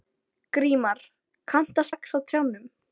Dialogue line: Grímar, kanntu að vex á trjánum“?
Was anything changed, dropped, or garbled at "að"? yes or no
no